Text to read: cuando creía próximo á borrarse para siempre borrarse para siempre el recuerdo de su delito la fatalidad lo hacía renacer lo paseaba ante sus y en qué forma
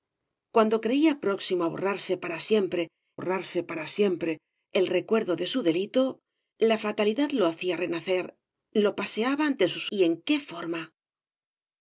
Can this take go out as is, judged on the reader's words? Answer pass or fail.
pass